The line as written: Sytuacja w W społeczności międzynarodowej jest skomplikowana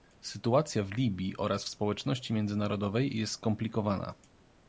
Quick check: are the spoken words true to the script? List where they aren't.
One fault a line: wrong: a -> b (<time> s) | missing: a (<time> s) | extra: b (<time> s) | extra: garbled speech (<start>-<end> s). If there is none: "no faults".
extra: Libii oraz (0.9 s)